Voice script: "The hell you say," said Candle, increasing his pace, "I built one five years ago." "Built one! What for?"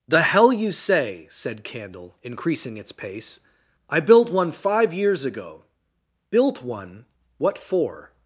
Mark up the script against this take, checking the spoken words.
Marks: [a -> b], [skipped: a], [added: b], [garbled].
"The hell you say," said Candle, increasing [his -> its] pace, "I built one five years ago." "Built one! What for?"